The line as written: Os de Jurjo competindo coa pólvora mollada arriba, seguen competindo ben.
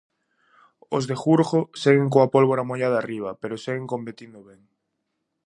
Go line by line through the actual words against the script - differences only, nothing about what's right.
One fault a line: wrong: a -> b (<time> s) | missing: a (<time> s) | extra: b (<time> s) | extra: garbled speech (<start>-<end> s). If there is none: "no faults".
wrong: competindo -> seguen (1.8 s)
extra: pero (3.4 s)